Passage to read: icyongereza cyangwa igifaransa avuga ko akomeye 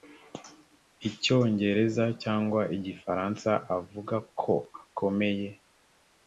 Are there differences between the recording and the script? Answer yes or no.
no